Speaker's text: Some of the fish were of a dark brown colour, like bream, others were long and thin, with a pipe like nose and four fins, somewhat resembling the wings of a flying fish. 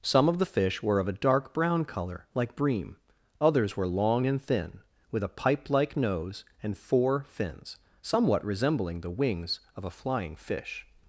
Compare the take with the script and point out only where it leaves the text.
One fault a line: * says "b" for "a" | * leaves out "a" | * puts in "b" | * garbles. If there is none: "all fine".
all fine